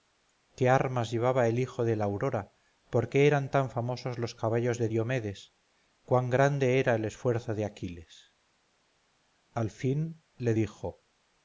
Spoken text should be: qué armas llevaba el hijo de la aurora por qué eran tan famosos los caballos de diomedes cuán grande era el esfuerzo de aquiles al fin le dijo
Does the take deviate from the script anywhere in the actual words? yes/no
no